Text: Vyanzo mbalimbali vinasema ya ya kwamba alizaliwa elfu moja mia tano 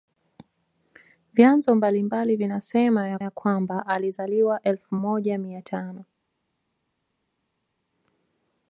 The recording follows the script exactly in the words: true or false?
true